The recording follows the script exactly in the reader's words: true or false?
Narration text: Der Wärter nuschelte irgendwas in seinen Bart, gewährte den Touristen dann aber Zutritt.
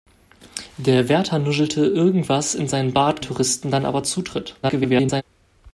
false